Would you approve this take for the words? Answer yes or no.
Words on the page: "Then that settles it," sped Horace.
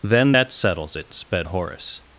yes